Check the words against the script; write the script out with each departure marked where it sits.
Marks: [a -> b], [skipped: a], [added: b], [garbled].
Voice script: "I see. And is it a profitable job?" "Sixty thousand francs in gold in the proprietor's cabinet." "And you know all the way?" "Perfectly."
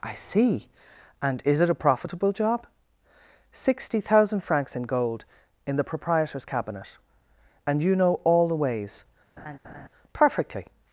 "I see. And is it a profitable job?" "Sixty thousand francs in gold in the proprietor's cabinet." "And you know all the [way?" -> ways] "Perfectly."